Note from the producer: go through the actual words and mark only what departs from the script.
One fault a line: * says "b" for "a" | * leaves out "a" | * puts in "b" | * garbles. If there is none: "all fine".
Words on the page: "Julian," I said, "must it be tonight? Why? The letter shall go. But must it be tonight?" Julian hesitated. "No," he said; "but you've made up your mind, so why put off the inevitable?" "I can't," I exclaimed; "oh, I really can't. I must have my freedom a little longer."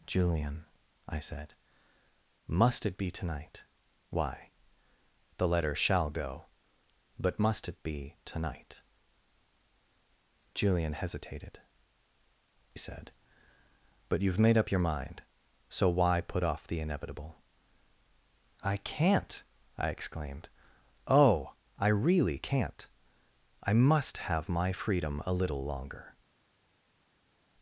* leaves out "No he"